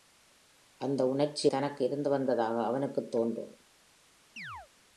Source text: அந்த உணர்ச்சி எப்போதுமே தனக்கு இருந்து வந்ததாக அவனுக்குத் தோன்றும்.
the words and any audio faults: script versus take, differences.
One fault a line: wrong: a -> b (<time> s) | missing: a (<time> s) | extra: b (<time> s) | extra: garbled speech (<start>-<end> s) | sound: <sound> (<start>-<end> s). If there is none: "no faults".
missing: எப்போதுமே (1.5 s)
sound: chirp (4.4-4.7 s)